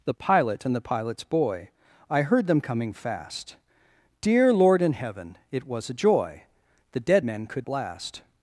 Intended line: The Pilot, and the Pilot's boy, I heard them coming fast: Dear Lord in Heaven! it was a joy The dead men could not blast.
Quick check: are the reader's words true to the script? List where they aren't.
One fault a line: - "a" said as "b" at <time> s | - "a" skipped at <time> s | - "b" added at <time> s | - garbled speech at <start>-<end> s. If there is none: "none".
- "not" skipped at 7.7 s